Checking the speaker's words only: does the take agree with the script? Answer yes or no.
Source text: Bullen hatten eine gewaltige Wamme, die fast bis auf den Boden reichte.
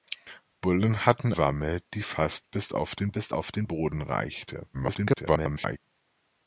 no